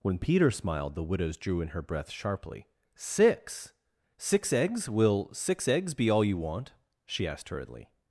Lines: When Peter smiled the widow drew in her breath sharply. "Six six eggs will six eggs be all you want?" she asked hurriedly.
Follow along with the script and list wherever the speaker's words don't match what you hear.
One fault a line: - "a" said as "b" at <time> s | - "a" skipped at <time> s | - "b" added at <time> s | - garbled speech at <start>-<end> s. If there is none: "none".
- "widow" said as "widows" at 1.0 s